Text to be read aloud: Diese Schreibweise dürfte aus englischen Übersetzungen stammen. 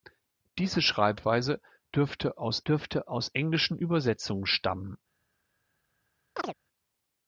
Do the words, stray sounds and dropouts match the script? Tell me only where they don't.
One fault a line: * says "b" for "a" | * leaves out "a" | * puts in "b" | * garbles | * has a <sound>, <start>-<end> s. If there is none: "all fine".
* puts in "dürfte aus"
* has a chirp, 6.4-6.5 s